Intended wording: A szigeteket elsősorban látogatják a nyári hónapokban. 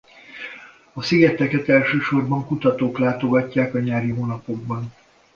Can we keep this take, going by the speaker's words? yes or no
no